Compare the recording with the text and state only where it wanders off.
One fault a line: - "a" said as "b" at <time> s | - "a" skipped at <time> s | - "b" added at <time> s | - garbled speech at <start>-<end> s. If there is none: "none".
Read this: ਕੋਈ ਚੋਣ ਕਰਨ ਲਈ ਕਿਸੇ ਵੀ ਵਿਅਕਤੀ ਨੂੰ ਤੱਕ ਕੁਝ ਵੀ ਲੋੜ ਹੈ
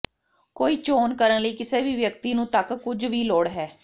none